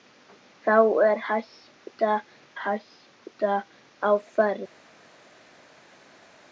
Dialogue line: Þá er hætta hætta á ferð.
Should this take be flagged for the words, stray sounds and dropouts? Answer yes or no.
no